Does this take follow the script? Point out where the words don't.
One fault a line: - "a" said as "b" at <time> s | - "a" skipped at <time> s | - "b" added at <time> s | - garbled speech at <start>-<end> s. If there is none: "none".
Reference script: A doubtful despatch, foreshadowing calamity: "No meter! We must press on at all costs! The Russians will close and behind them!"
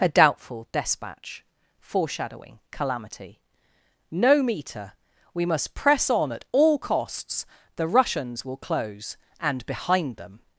none